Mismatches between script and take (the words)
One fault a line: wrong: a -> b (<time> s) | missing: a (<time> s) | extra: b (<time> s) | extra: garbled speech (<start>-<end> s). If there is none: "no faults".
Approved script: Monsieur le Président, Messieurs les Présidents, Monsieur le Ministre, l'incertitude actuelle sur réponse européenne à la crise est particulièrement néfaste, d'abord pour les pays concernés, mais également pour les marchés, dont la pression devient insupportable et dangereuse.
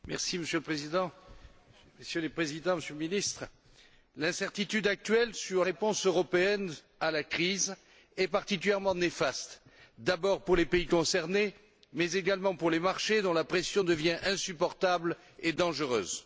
no faults